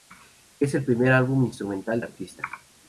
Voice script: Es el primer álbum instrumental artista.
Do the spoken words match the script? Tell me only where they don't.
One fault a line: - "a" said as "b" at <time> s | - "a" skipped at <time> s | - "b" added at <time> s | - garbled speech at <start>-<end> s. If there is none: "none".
none